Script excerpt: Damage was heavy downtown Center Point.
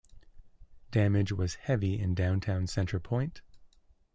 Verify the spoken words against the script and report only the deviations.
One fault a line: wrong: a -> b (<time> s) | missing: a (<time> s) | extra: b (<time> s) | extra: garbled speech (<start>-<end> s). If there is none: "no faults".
extra: in (2.0 s)